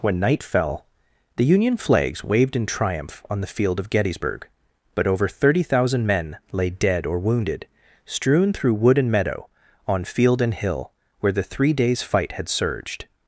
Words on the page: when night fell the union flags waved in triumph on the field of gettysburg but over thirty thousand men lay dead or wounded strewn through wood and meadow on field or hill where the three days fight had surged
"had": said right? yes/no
yes